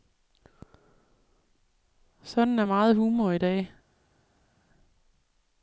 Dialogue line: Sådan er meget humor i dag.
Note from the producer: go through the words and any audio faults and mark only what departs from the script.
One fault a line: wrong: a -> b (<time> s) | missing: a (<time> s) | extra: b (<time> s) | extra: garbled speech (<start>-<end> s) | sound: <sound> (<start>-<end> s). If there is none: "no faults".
no faults